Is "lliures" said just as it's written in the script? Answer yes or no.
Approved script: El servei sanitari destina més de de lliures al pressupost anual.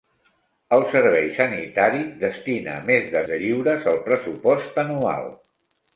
yes